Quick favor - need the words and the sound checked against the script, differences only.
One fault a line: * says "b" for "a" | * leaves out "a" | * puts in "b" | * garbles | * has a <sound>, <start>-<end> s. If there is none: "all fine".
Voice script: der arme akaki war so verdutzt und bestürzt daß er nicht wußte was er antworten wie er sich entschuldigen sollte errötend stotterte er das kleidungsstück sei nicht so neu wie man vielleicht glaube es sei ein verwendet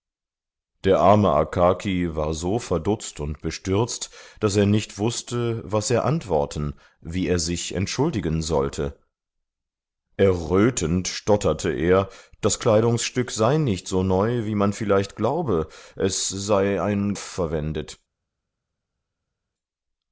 all fine